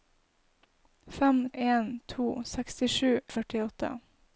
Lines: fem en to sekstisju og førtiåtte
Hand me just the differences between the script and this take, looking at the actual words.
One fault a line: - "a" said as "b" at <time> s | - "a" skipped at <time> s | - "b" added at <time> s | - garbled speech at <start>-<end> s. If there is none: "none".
none